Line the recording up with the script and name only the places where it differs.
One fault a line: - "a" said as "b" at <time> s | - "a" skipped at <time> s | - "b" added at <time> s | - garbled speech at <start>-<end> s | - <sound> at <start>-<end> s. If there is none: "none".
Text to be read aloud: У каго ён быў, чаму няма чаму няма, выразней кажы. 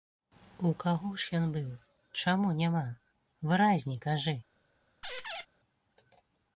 - "ж" added at 1.2 s
- "чаму няма" skipped at 2.8 s
- squeak at 5.0-5.5 s